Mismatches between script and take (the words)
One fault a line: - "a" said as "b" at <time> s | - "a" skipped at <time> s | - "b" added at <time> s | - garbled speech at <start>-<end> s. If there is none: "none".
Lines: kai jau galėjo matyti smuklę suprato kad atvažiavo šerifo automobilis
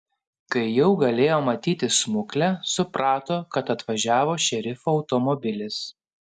none